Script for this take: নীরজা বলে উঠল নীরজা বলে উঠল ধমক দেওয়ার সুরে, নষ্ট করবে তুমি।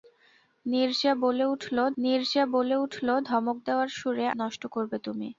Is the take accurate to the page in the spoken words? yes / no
yes